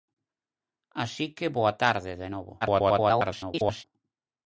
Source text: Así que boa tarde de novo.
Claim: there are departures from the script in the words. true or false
true